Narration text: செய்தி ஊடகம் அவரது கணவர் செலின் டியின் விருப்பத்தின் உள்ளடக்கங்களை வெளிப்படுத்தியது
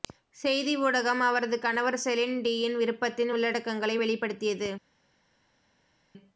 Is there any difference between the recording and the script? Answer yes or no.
no